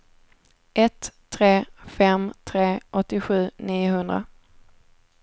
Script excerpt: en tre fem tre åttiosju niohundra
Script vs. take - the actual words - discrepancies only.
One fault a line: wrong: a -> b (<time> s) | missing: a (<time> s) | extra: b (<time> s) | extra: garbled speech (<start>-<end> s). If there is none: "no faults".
wrong: en -> ett (0.7 s)